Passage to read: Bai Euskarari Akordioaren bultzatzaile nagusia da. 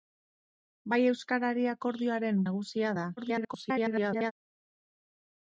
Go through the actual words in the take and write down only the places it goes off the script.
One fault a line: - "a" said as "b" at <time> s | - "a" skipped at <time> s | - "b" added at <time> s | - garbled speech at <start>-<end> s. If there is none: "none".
- "bultzatzaile" skipped at 2.4 s
- garbled speech at 3.2-4.3 s